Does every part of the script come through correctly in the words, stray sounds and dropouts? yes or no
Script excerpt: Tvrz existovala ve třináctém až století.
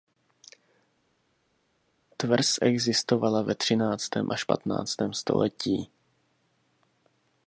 no